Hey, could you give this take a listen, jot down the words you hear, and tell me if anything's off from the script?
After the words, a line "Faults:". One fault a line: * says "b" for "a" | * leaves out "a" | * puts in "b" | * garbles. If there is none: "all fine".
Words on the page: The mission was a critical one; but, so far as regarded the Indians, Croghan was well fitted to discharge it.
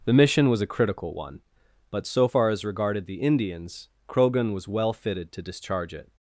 The mission was a critical one; but, so far as regarded the Indians, Croghan was well fitted to discharge it.
Faults:
all fine